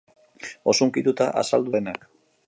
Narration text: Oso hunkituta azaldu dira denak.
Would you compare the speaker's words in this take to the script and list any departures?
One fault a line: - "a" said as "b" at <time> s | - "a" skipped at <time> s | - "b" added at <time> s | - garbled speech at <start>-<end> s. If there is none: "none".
- "dira" skipped at 1.8 s